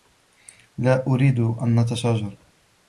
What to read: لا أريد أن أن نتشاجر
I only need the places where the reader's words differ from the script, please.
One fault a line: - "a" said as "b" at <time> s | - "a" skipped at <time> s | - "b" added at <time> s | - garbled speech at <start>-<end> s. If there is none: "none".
- "أن" skipped at 1.8 s